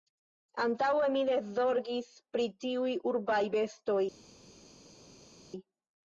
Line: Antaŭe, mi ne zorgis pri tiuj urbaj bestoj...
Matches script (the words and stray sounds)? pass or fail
pass